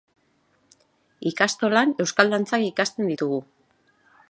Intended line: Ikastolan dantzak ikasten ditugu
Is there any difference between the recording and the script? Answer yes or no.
yes